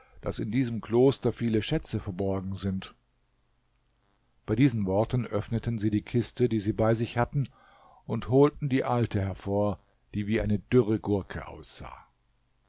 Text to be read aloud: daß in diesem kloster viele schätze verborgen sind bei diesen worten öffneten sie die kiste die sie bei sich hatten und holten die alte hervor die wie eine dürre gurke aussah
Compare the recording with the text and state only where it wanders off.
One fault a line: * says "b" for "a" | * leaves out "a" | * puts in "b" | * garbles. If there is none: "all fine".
all fine